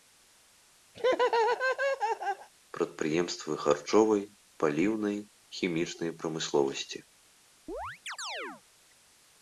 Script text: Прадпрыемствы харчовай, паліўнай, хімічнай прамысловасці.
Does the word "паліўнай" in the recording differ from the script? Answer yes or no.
no